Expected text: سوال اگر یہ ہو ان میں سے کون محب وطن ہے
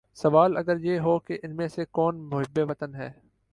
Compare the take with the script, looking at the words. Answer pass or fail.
fail